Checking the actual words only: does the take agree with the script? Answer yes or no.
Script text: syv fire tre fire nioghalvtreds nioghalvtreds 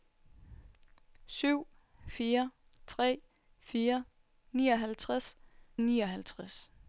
yes